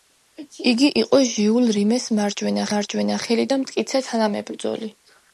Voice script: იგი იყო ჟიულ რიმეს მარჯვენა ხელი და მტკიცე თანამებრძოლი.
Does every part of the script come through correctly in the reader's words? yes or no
no